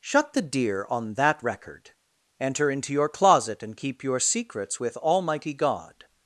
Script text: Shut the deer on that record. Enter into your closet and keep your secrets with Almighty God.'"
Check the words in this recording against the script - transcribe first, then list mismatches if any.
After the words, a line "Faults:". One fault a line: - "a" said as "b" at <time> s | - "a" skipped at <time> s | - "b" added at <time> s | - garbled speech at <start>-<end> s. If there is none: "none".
Shut the deer on that record. Enter into your closet and keep your secrets with Almighty God.'"
Faults:
none